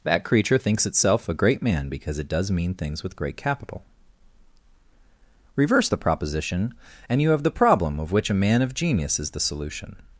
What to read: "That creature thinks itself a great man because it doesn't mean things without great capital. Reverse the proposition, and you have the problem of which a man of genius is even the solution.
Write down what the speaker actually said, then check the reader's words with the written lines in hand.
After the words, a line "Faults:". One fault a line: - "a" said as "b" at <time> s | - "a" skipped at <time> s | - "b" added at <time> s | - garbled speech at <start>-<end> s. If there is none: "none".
"That creature thinks itself a great man because it does mean things with great capital. Reverse the proposition, and you have the problem of which a man of genius is the solution.
Faults:
- "doesn't" said as "does" at 2.3 s
- "without" said as "with" at 3.0 s
- "even" skipped at 9.3 s